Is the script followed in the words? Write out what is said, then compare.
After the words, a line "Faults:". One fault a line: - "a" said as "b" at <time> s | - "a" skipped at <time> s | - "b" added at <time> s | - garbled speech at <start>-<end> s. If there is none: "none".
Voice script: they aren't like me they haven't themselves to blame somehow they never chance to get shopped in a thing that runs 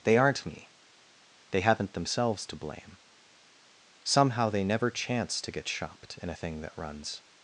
they aren't me they haven't themselves to blame somehow they never chance to get shopped in a thing that runs
Faults:
- "like" skipped at 0.5 s